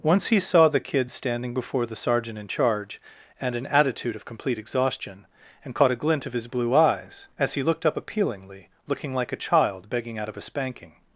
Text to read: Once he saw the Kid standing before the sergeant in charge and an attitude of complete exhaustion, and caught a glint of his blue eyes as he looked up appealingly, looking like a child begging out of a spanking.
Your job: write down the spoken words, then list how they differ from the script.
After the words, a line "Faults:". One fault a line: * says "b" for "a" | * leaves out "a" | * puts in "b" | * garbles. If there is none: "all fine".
Once he saw the Kid standing before the sergeant in charge and an attitude of complete exhaustion, and caught a glint of his blue eyes as he looked up appealingly, looking like a child begging out of a spanking.
Faults:
all fine